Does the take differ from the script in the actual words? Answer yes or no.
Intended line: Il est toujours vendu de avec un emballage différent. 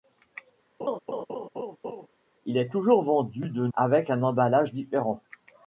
no